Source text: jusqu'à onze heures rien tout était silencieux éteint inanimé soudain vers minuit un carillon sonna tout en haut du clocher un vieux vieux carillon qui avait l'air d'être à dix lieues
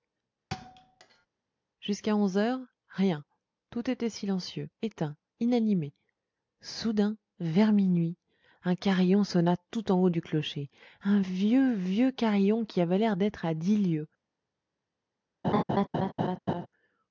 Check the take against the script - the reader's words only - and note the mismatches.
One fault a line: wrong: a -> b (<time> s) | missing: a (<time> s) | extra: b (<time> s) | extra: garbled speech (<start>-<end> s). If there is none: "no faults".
no faults